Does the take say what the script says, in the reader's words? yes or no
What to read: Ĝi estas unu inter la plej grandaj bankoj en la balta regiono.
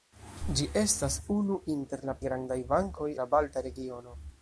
no